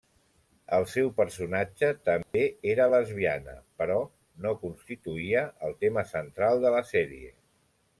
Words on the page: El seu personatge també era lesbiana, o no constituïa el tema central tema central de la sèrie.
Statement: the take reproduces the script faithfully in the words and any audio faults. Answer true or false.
false